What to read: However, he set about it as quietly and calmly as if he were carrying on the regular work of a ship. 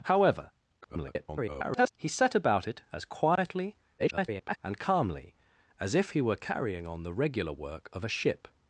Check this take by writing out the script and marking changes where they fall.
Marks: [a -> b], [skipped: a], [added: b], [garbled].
However, [garbled] he set about it as quietly [garbled] and calmly as if he were carrying on the regular work of a ship.